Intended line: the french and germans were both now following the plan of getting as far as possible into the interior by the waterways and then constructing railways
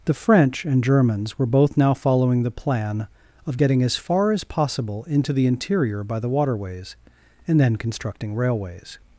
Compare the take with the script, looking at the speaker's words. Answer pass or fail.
pass